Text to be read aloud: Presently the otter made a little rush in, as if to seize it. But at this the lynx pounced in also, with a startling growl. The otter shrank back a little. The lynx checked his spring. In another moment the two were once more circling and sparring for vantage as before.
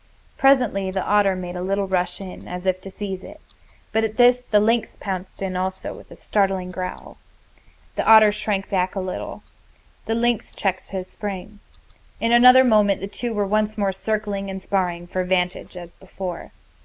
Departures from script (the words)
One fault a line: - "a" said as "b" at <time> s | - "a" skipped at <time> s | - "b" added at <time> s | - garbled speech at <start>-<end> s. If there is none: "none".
none